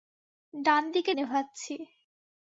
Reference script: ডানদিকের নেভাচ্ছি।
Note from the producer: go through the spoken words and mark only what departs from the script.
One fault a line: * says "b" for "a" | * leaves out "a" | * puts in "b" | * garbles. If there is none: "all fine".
all fine